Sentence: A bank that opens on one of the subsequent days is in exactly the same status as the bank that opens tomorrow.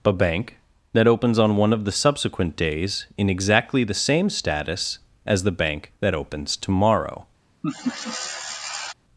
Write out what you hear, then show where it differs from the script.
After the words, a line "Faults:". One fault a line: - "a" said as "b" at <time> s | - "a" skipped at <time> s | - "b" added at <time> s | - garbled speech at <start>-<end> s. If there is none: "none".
A bank that opens on one of the subsequent days in exactly the same status as the bank that opens tomorrow.
Faults:
- "is" skipped at 3.0 s